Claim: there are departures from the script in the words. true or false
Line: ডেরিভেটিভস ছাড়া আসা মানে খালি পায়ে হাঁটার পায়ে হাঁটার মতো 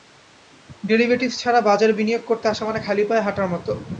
true